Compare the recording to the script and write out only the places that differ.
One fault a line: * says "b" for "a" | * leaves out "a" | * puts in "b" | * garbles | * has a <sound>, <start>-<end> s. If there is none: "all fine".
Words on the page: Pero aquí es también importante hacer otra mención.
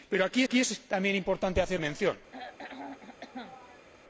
* puts in "aquí"
* leaves out "otra"
* has a throat clearing, 2.3-3.9 s